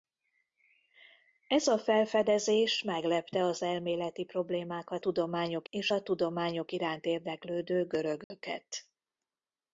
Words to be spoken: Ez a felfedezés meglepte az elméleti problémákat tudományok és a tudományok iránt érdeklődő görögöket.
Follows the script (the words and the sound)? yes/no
no